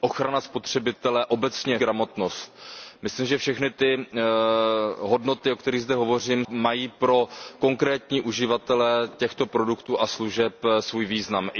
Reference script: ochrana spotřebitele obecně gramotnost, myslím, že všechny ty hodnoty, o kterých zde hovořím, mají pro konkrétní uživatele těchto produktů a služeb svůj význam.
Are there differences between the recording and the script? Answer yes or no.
no